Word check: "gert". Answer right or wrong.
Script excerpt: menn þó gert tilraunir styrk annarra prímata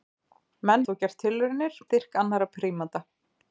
right